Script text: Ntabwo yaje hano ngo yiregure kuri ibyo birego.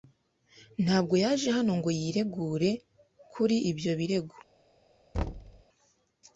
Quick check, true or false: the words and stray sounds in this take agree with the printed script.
false